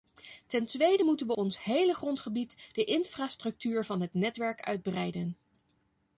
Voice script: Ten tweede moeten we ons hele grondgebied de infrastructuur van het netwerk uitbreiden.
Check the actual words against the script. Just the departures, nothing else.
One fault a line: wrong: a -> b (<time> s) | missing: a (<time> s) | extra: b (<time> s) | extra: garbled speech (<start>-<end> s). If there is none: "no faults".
no faults